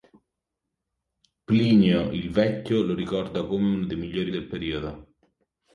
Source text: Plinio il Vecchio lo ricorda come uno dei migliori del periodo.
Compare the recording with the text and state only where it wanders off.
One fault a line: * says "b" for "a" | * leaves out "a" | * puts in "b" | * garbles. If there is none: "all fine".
all fine